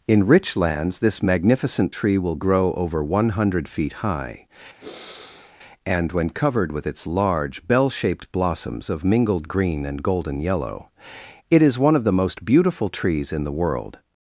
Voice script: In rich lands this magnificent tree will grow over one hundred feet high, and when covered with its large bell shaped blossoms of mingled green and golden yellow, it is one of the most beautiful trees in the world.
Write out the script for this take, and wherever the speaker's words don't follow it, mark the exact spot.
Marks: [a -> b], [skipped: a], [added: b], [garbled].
In rich lands this magnificent tree will grow over one hundred feet high, and when covered with its large bell shaped blossoms of mingled green and golden yellow, it is one of the most beautiful trees in the world.